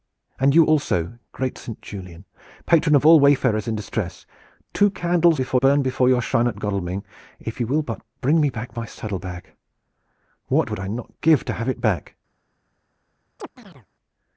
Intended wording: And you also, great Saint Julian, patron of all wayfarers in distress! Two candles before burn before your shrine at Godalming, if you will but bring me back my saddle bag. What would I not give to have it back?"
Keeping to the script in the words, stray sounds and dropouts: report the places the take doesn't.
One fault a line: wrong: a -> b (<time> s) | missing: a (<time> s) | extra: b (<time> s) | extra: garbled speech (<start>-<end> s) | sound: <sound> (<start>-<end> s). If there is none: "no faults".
sound: chirp (13.4-13.9 s)